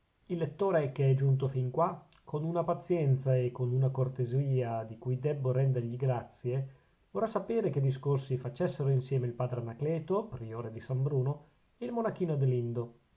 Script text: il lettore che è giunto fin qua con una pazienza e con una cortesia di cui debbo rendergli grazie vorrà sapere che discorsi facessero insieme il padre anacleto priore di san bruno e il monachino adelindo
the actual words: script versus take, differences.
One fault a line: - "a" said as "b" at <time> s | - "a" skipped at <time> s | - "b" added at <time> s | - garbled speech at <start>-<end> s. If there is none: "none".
none